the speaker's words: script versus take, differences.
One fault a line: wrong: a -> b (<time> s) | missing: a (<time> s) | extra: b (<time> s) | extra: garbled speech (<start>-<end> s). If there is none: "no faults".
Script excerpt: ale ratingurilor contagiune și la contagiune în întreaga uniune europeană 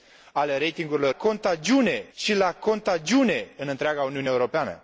no faults